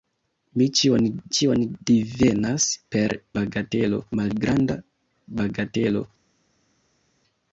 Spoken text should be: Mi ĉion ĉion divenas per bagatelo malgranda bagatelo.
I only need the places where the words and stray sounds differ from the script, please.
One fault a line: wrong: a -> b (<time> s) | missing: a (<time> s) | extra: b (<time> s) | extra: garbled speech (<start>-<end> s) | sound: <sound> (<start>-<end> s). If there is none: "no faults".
no faults